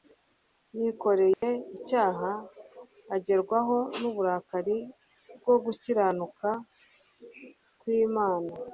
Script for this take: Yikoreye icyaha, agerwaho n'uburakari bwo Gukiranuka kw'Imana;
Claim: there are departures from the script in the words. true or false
false